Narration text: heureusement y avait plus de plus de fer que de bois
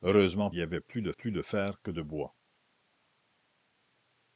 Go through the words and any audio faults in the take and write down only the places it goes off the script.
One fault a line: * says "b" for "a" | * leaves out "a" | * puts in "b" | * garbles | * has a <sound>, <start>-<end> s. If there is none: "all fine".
all fine